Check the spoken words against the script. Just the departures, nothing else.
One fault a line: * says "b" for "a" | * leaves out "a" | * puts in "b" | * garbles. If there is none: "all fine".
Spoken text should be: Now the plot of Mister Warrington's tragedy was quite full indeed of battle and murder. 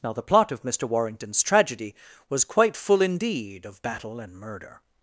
all fine